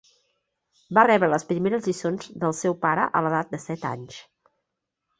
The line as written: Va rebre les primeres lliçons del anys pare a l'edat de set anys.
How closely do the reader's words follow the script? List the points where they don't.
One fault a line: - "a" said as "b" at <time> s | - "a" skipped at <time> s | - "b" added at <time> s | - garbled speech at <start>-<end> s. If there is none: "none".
- "anys" said as "seu" at 2.6 s